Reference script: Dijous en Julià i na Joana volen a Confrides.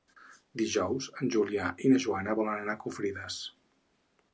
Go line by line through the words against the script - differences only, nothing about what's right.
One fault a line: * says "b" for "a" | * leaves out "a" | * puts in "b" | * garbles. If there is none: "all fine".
* puts in "anar"